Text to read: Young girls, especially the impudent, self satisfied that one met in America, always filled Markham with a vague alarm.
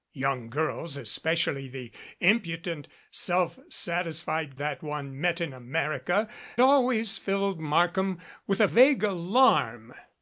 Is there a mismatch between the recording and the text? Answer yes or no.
no